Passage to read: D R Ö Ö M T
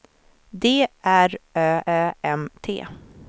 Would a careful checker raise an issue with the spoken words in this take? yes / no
no